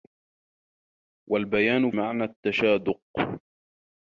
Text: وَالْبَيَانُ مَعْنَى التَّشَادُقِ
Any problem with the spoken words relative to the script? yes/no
no